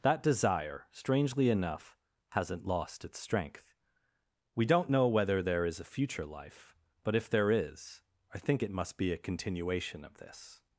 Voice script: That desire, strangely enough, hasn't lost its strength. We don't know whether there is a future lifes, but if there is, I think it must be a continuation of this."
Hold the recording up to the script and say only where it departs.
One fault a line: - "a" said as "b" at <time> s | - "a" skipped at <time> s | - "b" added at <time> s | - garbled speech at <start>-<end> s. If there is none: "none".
- "lifes" said as "life" at 6.2 s